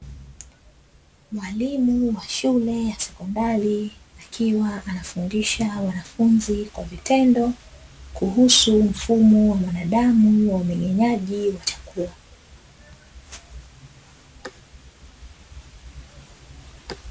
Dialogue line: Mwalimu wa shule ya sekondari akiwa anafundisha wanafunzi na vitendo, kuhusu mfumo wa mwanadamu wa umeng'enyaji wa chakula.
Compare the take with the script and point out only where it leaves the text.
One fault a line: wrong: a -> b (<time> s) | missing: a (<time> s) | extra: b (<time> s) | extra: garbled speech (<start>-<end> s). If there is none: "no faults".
wrong: na -> kwa (6.7 s)